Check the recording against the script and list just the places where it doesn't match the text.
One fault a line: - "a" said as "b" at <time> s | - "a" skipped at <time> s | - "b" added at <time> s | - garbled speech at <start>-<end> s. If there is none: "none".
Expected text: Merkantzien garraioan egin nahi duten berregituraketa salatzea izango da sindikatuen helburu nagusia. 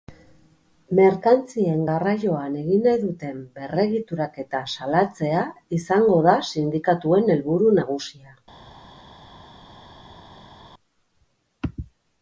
none